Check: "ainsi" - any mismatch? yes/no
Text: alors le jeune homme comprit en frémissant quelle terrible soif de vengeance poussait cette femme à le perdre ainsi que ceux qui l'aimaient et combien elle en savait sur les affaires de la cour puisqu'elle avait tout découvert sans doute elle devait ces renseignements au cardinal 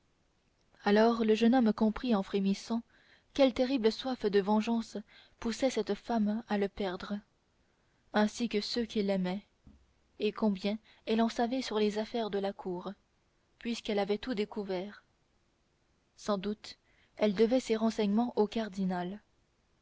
no